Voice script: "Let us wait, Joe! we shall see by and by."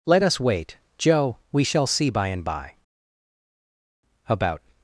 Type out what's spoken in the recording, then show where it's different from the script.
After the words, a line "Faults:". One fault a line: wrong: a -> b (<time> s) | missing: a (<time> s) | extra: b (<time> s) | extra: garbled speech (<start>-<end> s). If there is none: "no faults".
"Let us wait, Joe! we shall see by and by." About
Faults:
extra: About (4.3 s)